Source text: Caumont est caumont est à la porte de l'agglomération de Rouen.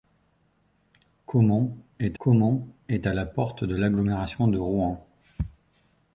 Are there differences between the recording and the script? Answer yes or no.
no